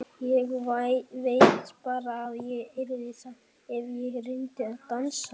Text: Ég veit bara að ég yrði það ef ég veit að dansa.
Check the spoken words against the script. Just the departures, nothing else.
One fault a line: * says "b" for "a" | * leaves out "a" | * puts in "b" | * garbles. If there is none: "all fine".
* says "reyndi" for "veit"